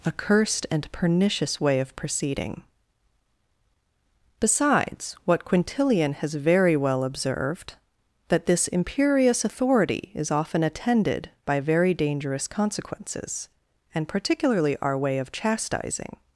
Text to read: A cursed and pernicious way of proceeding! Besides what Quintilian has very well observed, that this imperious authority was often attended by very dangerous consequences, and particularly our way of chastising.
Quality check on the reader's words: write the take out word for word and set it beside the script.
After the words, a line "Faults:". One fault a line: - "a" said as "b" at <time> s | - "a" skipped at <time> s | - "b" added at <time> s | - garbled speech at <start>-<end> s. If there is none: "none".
A cursed and pernicious way of proceeding! Besides what Quintilian has very well observed, that this imperious authority is often attended by very dangerous consequences, and particularly our way of chastising.
Faults:
- "was" said as "is" at 10.2 s